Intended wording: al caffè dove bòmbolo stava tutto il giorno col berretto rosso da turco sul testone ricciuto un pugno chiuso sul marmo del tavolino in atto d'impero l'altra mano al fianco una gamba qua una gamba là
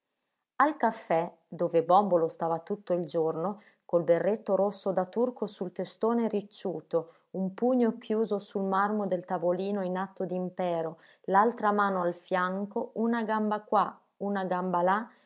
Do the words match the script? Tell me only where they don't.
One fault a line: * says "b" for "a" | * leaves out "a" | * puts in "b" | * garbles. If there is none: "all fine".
all fine